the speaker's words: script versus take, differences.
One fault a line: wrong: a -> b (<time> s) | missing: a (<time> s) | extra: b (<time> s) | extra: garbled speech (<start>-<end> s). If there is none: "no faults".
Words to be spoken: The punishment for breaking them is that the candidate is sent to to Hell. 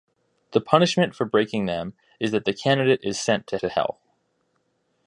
no faults